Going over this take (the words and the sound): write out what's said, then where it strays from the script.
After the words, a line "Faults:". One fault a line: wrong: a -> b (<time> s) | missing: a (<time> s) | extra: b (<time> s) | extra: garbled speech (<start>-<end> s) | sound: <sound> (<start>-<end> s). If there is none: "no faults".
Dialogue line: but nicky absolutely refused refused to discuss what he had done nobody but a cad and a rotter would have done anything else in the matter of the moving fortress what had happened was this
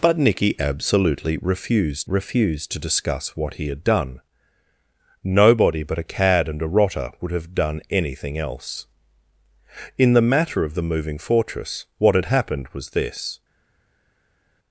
but nicky absolutely refused refused to discuss what he had done nobody but a cad and a rotter would have done anything else in the matter of the moving fortress what had happened was this
Faults:
no faults